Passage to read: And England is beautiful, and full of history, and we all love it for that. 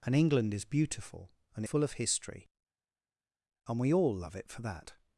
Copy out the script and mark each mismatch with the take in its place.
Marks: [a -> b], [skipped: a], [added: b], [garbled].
And England is beautiful, and full of history, and we all love it for that.